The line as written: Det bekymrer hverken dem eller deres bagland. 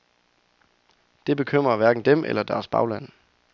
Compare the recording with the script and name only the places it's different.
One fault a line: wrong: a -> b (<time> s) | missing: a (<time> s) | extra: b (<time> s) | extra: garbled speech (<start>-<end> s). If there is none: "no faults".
no faults